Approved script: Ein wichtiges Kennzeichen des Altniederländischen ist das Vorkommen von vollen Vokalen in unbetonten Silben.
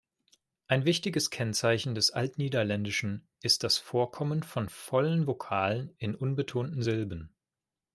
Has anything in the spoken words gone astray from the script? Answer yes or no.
no